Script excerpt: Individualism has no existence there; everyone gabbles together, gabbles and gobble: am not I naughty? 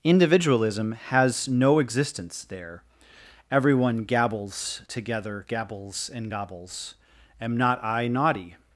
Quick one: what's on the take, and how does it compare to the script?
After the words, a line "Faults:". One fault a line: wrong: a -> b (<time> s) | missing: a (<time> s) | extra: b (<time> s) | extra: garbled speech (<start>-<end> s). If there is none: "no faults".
Individualism has no existence there; everyone gabbles together, gabbles and gobbles: am not I naughty?
Faults:
wrong: gobble -> gobbles (6.3 s)